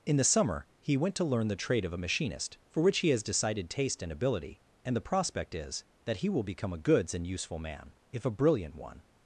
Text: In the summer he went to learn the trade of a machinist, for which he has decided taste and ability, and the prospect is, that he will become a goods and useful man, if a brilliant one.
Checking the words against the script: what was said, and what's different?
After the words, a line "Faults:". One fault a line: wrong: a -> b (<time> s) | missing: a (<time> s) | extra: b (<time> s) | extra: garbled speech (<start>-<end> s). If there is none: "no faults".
In the summer he went to learn the trade of a machinist, for which he has decided taste and ability, and the prospect is, that he will become a goods and useful man, if a brilliant one.
Faults:
no faults